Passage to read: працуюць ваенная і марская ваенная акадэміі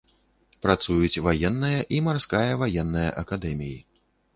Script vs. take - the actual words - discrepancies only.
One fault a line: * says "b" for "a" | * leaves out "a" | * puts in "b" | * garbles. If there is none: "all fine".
all fine